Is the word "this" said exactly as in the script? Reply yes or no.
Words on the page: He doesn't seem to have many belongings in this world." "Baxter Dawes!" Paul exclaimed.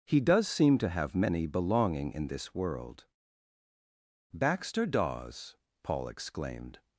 yes